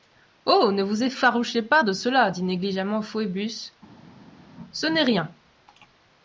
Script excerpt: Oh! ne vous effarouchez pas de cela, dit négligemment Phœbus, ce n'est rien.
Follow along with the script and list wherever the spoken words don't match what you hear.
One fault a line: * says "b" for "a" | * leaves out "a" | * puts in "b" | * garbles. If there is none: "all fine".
all fine